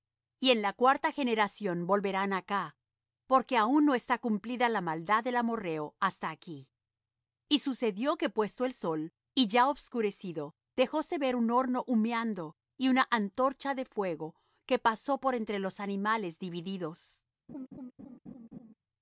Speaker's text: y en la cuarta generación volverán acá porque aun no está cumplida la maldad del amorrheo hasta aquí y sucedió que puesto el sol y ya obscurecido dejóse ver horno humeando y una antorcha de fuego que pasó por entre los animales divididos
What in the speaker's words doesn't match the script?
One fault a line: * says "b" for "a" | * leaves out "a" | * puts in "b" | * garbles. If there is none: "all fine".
* puts in "un"